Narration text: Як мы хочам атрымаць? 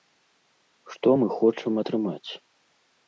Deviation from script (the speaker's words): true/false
true